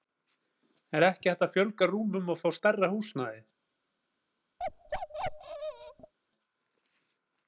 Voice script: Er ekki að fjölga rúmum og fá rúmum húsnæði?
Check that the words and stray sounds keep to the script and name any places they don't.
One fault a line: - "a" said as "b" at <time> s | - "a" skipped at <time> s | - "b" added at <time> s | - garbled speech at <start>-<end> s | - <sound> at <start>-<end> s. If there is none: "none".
- "hægt" added at 1.3 s
- "rúmum" said as "stærra" at 2.6 s
- bark at 4.6-6.1 s